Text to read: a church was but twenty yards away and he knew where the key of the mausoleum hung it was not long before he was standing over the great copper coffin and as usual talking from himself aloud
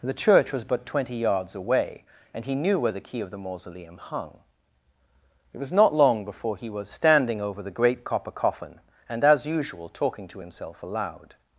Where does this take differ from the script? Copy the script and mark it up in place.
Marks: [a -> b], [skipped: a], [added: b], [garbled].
[a -> the] church was but twenty yards away and he knew where the key of the mausoleum hung it was not long before he was standing over the great copper coffin and as usual talking [from -> to] himself aloud